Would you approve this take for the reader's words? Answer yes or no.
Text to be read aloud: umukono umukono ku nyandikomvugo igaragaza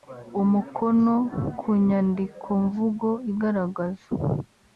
no